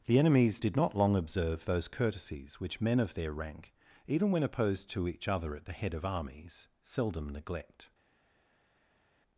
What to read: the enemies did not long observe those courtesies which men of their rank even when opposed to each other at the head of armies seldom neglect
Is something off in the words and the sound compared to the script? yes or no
no